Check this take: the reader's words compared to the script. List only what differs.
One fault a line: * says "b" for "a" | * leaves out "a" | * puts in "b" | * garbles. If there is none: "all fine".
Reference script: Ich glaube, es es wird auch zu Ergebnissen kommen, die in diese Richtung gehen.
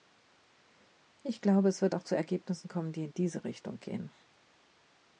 * leaves out "es"